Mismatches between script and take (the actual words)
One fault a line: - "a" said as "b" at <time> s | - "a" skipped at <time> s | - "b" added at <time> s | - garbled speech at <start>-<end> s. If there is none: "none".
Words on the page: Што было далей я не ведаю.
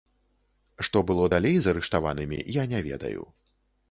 - "з арыштаванымі" added at 1.6 s